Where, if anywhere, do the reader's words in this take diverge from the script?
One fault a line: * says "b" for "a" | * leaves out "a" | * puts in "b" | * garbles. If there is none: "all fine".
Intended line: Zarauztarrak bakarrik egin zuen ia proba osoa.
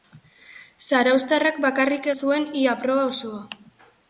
* leaves out "egin"